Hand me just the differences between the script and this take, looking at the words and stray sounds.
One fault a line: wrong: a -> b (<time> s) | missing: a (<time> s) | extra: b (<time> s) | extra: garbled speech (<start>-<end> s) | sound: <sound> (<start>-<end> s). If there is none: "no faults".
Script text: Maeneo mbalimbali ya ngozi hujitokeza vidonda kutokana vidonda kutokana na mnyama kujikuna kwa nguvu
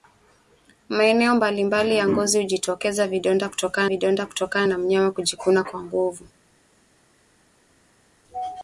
no faults